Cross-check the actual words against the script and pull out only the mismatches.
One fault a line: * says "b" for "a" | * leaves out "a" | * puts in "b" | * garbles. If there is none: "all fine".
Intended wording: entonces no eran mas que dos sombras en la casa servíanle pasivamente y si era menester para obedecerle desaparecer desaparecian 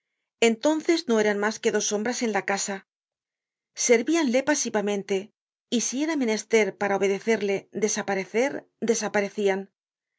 all fine